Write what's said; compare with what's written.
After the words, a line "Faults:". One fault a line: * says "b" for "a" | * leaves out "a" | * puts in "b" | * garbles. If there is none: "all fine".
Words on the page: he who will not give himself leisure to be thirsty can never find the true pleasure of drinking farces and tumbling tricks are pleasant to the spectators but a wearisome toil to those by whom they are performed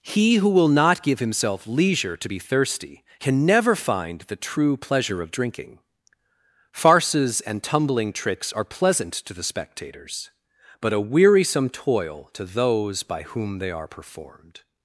he who will not give himself leisure to be thirsty can never find the true pleasure of drinking farces and tumbling tricks are pleasant to the spectators but a wearisome toil to those by whom they are performed
Faults:
all fine